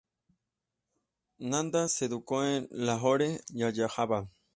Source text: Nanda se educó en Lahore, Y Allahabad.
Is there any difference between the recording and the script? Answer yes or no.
no